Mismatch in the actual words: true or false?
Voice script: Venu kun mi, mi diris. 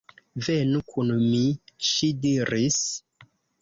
true